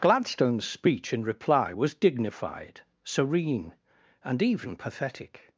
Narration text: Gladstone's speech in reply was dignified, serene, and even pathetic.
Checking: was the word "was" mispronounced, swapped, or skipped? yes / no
no